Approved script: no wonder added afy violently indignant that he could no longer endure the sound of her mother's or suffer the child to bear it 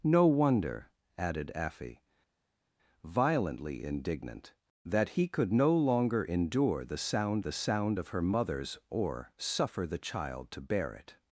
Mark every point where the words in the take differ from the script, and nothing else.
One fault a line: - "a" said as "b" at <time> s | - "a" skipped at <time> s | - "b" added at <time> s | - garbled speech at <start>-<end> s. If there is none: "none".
- "the sound" added at 7.4 s